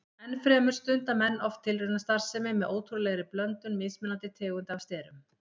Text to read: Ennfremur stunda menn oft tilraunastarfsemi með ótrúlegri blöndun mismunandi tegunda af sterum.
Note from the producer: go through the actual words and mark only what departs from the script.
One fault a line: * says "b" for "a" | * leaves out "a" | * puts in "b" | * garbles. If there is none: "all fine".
all fine